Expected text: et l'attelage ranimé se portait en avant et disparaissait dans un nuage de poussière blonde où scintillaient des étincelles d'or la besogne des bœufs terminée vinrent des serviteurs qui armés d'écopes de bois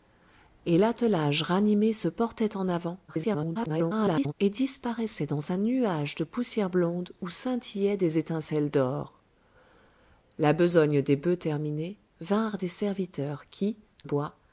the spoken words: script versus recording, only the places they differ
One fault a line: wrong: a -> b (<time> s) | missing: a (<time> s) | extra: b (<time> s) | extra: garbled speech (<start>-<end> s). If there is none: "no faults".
extra: garbled speech (3.1-4.3 s)
missing: armés d'écopes de (13.8 s)